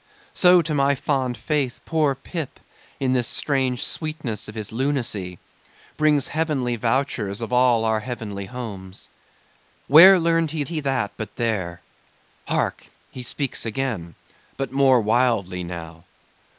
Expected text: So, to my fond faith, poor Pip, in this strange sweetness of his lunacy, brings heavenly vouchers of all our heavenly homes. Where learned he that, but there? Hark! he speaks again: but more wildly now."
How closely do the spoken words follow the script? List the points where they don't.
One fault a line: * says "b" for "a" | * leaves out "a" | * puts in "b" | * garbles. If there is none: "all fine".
* puts in "he"